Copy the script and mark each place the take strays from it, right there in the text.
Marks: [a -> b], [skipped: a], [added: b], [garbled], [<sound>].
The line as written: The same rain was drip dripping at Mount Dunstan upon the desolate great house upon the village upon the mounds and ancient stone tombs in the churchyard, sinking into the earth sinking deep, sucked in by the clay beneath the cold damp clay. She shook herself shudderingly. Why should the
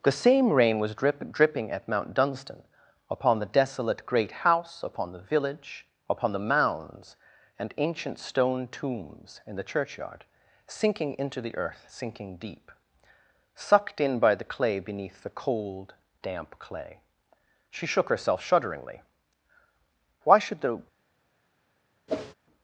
The same rain was drip dripping at Mount Dunstan upon the desolate great house upon the village upon the mounds and ancient stone tombs in the churchyard, sinking into the earth sinking deep, sucked in by the clay beneath the cold damp clay. She shook herself shudderingly. Why should the [whoosh]